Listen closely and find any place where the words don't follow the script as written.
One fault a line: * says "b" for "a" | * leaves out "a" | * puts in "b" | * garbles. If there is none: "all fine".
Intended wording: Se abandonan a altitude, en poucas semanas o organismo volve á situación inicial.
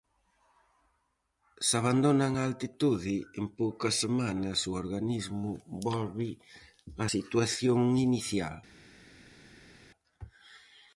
all fine